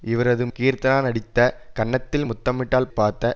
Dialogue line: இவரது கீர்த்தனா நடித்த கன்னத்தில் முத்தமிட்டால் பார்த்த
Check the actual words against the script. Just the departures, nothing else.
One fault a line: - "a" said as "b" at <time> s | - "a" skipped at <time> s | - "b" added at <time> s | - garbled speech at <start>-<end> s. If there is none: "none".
none